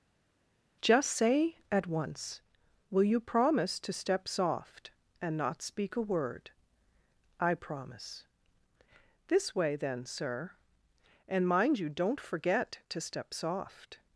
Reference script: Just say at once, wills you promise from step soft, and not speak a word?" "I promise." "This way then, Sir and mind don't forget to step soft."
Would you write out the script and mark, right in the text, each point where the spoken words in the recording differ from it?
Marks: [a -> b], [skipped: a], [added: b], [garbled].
Just say at once, [wills -> will] you promise [from -> to] step soft, and not speak a word?" "I promise." "This way then, Sir and mind [added: you] don't forget to step soft."